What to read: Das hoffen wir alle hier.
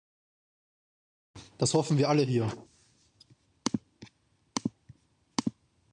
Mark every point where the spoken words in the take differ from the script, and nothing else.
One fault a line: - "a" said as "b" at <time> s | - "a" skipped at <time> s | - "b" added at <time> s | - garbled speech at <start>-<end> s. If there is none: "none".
none